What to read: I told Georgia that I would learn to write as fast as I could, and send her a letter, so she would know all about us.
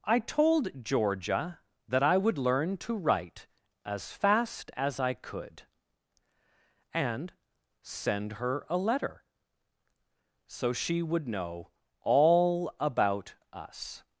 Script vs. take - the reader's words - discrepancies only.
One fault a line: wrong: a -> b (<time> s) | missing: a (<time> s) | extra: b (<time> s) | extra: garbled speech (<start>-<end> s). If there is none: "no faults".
no faults